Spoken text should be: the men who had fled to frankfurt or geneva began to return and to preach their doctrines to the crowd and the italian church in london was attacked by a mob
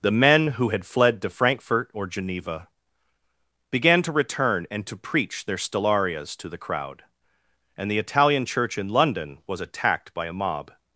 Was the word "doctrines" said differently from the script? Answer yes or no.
yes